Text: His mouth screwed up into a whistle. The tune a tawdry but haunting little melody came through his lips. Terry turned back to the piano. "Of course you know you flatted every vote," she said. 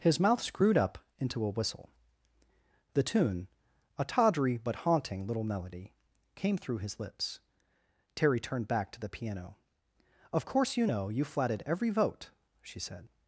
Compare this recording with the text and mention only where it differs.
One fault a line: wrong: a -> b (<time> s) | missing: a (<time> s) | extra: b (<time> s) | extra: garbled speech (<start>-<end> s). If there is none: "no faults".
no faults